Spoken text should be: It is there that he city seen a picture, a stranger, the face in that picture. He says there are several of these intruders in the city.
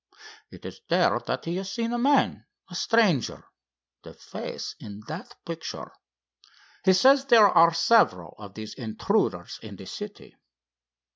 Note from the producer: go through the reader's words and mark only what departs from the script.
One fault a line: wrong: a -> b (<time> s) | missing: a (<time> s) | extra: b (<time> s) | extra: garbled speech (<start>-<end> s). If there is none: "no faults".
wrong: city -> has (1.6 s)
wrong: picture -> man (2.0 s)